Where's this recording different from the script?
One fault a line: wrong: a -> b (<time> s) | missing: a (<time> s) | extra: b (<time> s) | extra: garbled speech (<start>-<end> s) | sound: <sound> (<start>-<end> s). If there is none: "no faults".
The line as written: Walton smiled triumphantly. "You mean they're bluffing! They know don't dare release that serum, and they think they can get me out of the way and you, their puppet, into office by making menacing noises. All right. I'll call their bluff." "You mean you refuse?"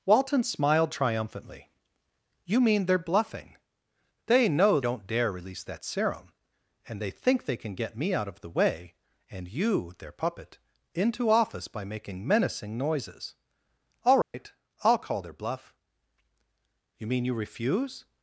sound: dropout (14.2-14.3 s)